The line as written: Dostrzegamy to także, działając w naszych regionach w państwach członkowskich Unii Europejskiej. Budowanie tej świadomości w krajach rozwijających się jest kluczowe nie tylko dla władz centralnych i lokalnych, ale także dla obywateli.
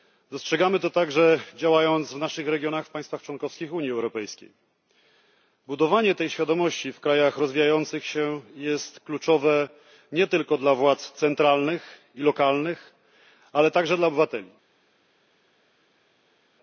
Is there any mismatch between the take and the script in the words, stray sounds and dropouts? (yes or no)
no